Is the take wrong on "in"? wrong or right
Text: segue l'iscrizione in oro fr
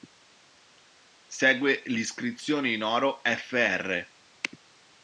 right